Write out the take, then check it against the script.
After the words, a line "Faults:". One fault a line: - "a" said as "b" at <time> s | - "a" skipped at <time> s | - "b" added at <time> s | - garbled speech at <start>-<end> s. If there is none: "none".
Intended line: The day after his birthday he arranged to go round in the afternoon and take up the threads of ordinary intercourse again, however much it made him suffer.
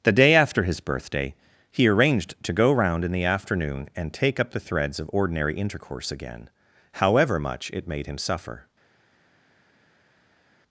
The day after his birthday he arranged to go round in the afternoon and take up the threads of ordinary intercourse again, however much it made him suffer.
Faults:
none